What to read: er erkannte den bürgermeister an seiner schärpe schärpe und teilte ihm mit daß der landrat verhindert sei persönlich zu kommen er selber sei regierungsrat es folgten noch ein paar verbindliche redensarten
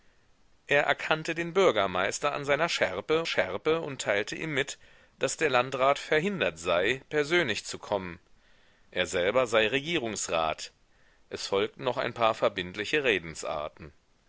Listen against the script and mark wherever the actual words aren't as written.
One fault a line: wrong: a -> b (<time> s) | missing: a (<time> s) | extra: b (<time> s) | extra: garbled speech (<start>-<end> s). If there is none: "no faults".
no faults